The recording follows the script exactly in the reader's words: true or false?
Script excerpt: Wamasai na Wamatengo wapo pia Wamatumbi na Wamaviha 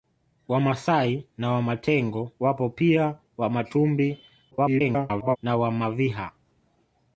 false